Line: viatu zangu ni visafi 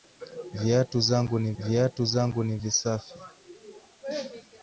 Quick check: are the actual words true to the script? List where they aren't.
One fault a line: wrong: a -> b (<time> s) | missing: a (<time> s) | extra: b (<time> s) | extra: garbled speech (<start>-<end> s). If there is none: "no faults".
extra: viatu zangu ni (1.6 s)